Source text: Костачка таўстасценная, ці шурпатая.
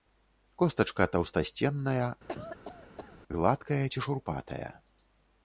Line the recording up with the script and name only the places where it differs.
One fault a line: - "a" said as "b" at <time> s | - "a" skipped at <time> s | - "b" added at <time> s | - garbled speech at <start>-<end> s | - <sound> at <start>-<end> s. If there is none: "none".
- cough at 2.3-3.2 s
- "гладкая" added at 3.4 s